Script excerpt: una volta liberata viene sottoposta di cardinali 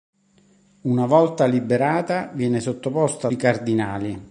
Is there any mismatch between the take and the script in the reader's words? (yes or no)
no